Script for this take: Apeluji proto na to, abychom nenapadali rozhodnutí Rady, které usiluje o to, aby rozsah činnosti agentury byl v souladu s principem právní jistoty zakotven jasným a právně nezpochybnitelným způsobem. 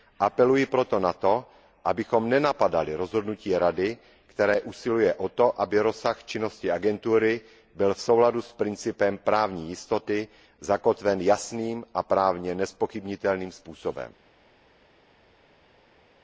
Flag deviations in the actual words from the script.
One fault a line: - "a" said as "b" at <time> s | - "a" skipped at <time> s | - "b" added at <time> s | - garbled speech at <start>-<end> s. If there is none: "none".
none